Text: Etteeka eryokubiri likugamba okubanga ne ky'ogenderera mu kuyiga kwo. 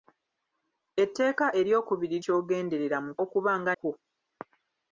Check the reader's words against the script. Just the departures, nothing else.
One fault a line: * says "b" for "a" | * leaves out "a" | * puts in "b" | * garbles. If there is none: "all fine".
* leaves out "likugamba okubanga ne"
* says "okubanga" for "kuyiga"